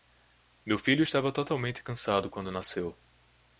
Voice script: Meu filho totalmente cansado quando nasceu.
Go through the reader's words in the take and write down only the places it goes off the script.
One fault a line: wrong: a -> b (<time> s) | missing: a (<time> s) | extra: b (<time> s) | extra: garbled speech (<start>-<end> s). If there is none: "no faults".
extra: estava (1.0 s)